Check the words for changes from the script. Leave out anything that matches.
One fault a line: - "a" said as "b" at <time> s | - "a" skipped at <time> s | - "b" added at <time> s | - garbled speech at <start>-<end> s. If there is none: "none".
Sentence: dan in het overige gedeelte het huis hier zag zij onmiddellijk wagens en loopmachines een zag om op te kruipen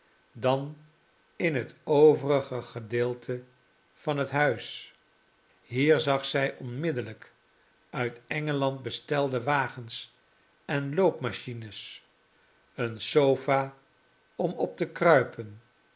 - "van" added at 3.9 s
- "uit engeland bestelde" added at 7.9 s
- "zag" said as "sofa" at 13.0 s